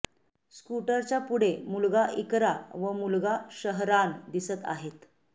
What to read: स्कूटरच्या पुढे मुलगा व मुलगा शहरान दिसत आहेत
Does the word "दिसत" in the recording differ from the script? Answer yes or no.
no